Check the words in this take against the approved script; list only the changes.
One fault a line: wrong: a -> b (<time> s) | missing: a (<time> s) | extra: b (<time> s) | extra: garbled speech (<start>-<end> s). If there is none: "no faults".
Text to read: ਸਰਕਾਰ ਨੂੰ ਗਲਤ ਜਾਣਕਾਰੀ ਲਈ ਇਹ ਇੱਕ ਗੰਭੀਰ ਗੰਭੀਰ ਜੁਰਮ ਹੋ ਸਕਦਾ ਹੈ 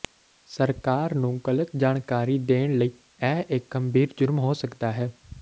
extra: ਦੇਣ (2.5 s)
missing: ਗੰਭੀਰ (4.1 s)